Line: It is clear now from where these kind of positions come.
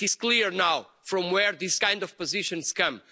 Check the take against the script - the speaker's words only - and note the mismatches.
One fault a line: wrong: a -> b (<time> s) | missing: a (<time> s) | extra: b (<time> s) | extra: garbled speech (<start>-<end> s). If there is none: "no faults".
no faults